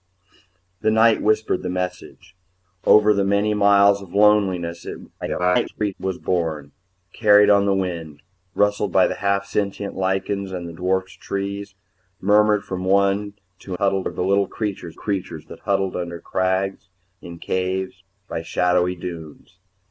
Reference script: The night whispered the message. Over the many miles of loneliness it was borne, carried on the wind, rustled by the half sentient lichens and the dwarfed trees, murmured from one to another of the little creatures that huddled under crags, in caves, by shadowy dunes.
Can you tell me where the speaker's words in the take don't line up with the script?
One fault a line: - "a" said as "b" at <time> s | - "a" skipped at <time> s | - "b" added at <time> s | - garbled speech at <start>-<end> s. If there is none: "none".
- garbled speech at 5.2-5.9 s
- "another" said as "huddled" at 13.7 s
- "creatures" added at 14.9 s